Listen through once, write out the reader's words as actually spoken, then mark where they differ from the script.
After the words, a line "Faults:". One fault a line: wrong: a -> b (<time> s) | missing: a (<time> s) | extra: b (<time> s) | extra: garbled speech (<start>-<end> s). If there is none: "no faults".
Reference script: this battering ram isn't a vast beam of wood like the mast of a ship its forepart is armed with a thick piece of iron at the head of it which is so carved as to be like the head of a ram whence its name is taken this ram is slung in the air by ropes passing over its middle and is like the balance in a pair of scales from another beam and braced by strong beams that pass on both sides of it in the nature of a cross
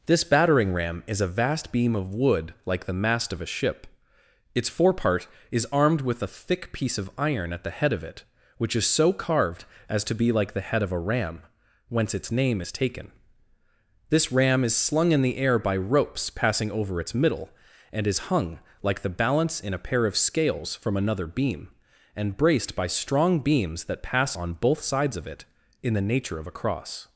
this battering ram is a vast beam of wood like the mast of a ship its forepart is armed with a thick piece of iron at the head of it which is so carved as to be like the head of a ram whence its name is taken this ram is slung in the air by ropes passing over its middle and is hung like the balance in a pair of scales from another beam and braced by strong beams that pass on both sides of it in the nature of a cross
Faults:
wrong: isn't -> is (1.1 s)
extra: hung (18.3 s)